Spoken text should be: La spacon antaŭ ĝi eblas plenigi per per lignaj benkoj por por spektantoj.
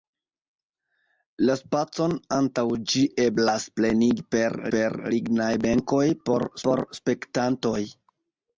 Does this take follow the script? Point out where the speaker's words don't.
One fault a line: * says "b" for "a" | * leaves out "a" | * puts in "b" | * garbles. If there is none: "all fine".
all fine